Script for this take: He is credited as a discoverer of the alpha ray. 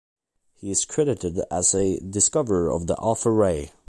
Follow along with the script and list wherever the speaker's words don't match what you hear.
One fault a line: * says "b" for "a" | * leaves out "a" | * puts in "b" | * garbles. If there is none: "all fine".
all fine